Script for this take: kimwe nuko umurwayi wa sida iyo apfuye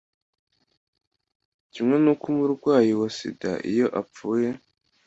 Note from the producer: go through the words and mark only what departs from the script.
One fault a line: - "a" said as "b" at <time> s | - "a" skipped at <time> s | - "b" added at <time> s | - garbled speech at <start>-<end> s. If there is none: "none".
none